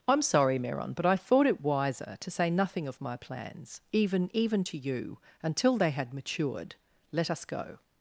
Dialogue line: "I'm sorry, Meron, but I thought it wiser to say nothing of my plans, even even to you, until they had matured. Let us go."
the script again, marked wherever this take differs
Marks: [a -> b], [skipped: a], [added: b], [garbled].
"I'm sorry, Meron, but I thought it wiser to say nothing of my plans, even even to you, until they had matured. Let us go."